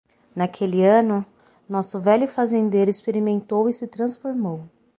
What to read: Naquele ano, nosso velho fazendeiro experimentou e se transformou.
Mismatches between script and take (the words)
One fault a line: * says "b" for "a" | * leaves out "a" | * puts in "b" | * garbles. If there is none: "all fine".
all fine